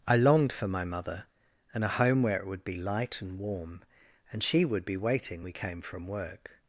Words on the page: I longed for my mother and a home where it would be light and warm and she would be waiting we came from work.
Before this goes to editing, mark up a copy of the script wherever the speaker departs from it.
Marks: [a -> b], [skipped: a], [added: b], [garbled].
I longed for my mother and a home where it would be light and warm and she would be waiting we came from work.